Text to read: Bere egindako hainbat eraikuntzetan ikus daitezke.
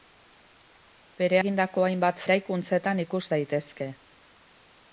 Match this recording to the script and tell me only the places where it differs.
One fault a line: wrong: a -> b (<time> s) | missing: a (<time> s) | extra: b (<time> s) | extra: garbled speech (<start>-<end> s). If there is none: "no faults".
no faults